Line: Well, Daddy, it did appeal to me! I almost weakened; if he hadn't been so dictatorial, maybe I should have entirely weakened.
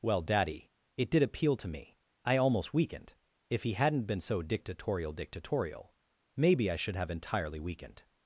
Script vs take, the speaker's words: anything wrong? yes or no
yes